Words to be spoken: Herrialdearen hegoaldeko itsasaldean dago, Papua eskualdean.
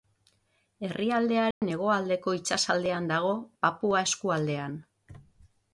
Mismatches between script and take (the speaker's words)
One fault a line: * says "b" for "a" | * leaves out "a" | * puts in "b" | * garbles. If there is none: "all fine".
all fine